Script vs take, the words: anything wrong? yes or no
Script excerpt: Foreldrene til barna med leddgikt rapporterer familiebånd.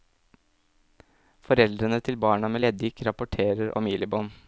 no